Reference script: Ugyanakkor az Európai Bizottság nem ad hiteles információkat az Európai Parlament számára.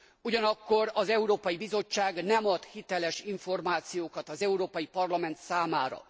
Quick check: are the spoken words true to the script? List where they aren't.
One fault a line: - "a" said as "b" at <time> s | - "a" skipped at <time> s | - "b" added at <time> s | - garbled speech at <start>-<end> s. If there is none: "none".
none